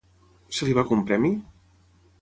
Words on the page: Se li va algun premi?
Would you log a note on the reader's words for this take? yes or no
no